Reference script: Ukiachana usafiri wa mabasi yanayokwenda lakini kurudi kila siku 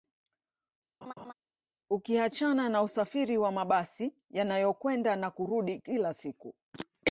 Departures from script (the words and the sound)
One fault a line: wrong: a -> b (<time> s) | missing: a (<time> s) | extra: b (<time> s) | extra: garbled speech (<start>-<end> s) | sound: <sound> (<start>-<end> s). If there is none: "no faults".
sound: laugh (1.0-1.3 s)
extra: na (2.7 s)
wrong: lakini -> na (5.2 s)